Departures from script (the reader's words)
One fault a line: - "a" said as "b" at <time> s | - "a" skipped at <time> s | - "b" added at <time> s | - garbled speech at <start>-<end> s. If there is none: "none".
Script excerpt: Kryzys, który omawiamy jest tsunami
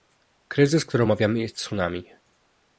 none